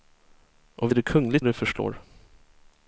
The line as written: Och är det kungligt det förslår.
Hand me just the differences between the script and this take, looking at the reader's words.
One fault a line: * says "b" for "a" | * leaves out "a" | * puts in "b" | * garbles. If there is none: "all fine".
all fine